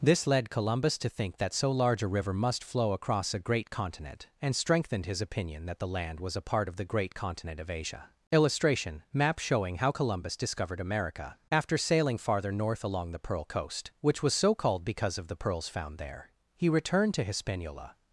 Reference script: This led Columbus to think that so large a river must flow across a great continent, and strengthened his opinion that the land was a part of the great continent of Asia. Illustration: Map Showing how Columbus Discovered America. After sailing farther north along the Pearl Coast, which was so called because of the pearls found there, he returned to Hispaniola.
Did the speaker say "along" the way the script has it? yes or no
yes